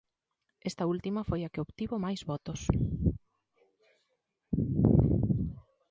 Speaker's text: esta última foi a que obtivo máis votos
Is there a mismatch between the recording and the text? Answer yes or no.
no